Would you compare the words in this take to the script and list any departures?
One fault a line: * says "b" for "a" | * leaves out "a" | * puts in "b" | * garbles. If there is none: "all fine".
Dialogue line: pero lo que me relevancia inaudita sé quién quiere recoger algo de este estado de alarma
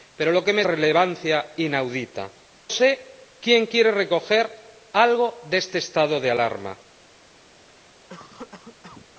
all fine